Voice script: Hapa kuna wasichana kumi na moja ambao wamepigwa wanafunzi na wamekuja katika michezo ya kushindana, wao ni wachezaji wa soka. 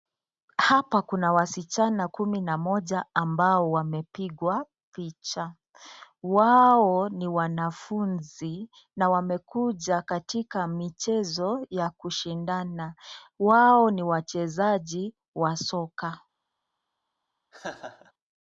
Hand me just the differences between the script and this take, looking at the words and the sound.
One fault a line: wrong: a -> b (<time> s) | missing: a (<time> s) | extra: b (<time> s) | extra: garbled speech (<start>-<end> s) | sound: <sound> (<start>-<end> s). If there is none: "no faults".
extra: picha wao ni (4.9 s)
sound: laugh (17.5-18.1 s)